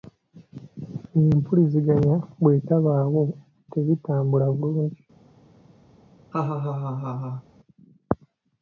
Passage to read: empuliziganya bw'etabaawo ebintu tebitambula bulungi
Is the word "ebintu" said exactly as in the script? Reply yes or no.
no